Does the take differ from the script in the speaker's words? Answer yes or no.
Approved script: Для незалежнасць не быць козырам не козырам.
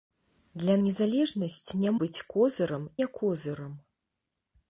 no